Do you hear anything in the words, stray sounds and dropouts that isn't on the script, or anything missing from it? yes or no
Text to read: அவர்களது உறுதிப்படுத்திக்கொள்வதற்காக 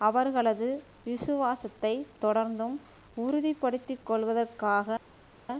yes